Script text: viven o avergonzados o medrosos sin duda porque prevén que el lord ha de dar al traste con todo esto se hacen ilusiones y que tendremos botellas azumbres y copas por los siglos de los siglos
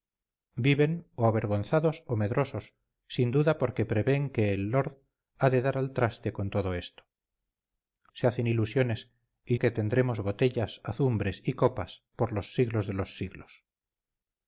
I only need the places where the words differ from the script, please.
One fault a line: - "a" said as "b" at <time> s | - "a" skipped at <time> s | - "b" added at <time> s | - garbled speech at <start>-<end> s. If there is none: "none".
none